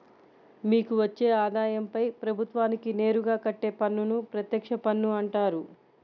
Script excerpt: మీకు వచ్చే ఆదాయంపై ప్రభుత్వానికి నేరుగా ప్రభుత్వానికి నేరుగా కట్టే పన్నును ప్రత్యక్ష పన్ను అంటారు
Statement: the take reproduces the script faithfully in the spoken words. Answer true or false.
false